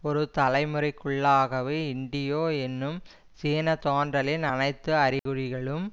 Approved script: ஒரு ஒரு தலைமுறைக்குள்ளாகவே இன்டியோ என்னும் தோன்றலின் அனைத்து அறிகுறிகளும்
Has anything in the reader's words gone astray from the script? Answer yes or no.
yes